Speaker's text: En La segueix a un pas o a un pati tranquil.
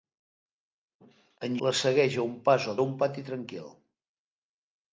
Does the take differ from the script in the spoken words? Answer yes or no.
no